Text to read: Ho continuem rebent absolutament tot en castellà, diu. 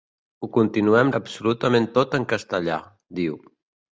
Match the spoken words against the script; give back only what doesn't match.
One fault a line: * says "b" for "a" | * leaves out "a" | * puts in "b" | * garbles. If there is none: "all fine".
* leaves out "rebent"